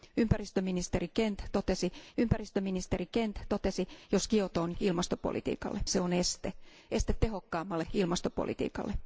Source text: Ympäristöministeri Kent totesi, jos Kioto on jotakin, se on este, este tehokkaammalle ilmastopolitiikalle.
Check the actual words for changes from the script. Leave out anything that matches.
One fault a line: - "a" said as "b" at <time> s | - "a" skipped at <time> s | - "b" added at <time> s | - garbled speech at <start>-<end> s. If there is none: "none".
- "ympäristöministeri Kent totesi" added at 2.2 s
- "jotakin" said as "ilmastopolitiikalle" at 4.8 s